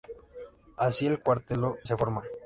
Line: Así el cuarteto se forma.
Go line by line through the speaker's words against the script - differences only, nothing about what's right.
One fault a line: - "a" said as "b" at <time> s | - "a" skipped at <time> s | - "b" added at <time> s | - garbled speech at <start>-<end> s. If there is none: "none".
none